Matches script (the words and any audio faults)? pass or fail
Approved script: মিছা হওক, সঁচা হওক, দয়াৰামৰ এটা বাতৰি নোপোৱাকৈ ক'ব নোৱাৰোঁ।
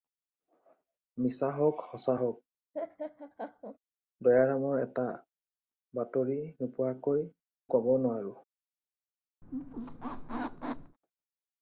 fail